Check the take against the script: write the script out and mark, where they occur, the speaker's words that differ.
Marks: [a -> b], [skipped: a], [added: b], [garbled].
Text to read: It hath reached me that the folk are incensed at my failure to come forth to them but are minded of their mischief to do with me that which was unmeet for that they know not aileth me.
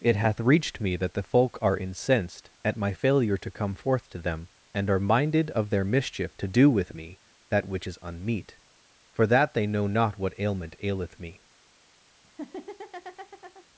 It hath reached me that the folk are incensed at my failure to come forth to them [but -> and] are minded of their mischief to do with me that which [was -> is] unmeet for that they know not [added: what ailment] aileth me.